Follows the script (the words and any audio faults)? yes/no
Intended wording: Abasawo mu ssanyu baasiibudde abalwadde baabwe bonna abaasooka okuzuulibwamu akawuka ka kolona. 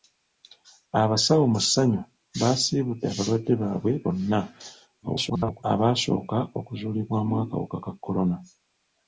no